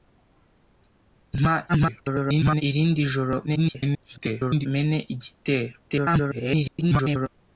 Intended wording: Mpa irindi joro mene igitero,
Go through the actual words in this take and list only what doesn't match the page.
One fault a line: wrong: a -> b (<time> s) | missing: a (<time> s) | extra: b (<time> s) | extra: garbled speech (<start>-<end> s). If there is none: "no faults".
extra: garbled speech (1.7-2.6 s)
extra: garbled speech (3.5-4.7 s)
extra: garbled speech (5.9-7.3 s)